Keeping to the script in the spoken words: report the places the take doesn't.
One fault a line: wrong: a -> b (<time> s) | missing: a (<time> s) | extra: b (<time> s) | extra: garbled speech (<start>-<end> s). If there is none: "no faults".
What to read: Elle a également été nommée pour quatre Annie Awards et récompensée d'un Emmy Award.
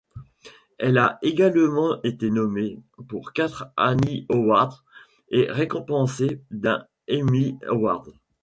no faults